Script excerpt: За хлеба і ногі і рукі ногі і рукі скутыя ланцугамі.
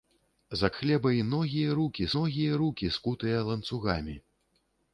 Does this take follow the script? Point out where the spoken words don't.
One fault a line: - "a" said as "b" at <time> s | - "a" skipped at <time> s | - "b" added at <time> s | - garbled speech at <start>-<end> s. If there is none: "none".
none